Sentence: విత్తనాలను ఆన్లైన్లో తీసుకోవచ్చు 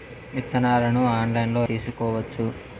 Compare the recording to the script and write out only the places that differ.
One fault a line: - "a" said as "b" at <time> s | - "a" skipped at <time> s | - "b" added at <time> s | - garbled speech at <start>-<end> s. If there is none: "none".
none